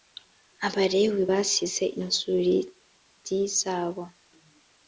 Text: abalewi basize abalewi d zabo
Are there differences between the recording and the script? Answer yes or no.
yes